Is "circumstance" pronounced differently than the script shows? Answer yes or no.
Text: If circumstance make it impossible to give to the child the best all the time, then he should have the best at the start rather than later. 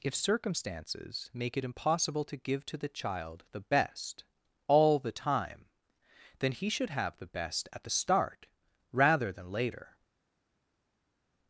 yes